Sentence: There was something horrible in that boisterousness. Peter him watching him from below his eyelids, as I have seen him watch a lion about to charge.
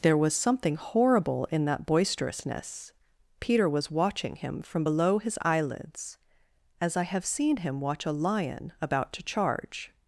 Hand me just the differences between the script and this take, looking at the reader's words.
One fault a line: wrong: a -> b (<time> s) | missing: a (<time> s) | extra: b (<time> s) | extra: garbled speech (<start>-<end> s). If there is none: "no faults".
wrong: him -> was (3.7 s)